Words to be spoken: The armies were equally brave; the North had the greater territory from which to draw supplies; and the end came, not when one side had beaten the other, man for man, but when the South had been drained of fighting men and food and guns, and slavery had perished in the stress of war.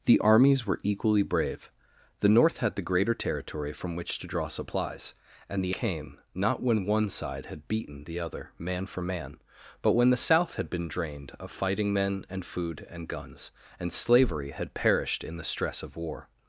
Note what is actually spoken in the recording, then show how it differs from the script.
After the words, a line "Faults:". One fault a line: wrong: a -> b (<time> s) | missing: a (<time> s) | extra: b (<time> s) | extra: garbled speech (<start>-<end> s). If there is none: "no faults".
The armies were equally brave; the North had the greater territory from which to draw supplies; and the came, not when one side had beaten the other, man for man, but when the South had been drained of fighting men and food and guns, and slavery had perished in the stress of war.
Faults:
missing: end (5.8 s)